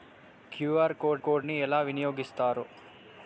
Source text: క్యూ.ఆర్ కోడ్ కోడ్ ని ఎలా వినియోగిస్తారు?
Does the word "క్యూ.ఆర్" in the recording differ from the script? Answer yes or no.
no